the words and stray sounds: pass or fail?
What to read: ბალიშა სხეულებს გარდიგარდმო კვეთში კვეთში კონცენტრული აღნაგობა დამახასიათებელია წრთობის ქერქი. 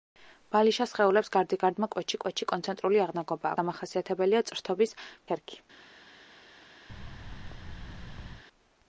fail